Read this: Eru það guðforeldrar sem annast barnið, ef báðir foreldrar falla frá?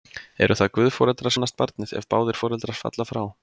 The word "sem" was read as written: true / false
false